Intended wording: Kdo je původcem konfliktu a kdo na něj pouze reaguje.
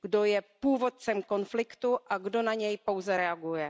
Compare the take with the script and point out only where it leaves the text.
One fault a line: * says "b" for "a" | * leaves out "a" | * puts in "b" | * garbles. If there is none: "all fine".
all fine